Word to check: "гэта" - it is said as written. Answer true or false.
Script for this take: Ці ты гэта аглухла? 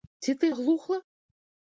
false